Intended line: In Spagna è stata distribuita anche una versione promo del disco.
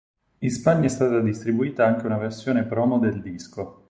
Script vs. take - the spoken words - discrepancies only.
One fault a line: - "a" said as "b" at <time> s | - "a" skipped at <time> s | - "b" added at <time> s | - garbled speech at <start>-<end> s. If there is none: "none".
none